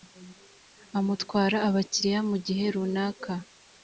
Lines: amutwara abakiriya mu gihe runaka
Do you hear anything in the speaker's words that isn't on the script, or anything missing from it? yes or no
no